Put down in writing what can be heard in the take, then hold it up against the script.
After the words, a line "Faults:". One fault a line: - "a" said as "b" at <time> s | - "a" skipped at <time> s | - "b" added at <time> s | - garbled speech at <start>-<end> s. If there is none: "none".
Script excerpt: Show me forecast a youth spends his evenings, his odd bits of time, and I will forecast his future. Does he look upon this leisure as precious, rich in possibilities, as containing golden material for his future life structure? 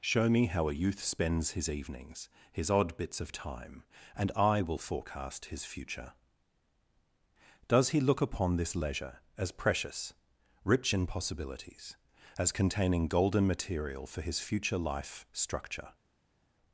Show me how a youth spends his evenings, his odd bits of time, and I will forecast his future. Does he look upon this leisure as precious, rich in possibilities, as containing golden material for his future life structure?
Faults:
- "forecast" said as "how" at 0.5 s